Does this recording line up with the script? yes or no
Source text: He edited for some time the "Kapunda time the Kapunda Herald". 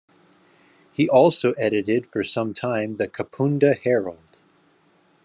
no